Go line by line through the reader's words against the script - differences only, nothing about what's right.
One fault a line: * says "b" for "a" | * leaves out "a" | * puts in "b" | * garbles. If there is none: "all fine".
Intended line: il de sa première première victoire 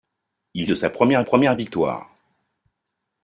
all fine